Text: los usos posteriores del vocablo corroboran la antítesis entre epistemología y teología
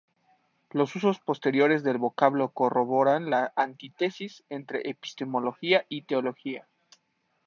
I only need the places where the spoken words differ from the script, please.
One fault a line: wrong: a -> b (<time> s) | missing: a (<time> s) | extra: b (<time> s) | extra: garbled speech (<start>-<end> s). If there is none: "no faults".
no faults